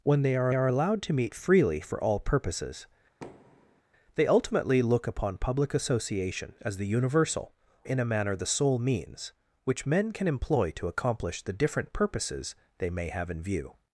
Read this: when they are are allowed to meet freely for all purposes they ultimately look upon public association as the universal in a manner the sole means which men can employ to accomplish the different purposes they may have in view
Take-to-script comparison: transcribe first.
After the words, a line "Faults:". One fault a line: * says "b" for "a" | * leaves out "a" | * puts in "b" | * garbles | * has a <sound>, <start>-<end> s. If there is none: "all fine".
when they are are allowed to meet freely for all purposes they ultimately look upon public association as the universal in a manner the sole means which men can employ to accomplish the different purposes they may have in view
Faults:
* has a thud, 3.2-3.8 s